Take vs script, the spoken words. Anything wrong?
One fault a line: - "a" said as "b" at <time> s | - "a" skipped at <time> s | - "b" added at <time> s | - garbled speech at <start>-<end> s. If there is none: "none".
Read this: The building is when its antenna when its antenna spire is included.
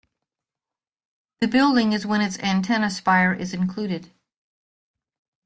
- "when its antenna" skipped at 2.9 s